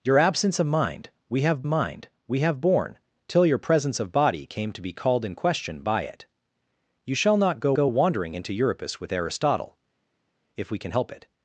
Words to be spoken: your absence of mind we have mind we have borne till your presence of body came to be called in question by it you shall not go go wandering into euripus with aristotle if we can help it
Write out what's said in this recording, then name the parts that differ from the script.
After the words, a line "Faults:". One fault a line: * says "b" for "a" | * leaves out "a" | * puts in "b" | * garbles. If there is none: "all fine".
your absence of mind we have mind we have borne till your presence of body came to be called in question by it you shall not go go wandering into euripus with aristotle if we can help it
Faults:
all fine